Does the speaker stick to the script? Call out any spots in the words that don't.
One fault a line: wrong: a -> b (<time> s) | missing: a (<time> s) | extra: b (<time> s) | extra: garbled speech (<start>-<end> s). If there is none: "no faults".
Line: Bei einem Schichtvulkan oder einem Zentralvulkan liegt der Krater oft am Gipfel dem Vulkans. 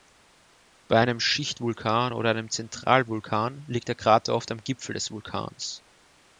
wrong: dem -> des (4.9 s)